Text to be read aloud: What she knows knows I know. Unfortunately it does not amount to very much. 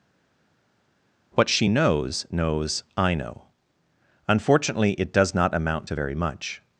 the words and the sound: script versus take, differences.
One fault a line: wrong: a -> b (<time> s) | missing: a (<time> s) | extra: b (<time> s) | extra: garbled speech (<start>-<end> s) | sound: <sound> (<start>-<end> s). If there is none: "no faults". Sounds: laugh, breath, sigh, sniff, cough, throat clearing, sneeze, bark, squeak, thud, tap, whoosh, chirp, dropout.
no faults